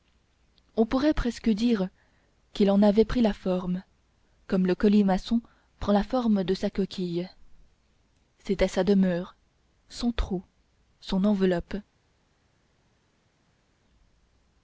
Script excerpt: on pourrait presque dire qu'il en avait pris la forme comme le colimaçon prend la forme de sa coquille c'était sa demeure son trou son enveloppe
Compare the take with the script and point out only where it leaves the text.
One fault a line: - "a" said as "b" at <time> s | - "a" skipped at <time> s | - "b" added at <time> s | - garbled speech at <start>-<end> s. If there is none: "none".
none